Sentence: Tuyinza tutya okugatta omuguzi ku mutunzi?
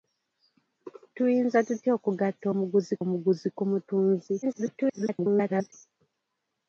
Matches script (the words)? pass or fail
fail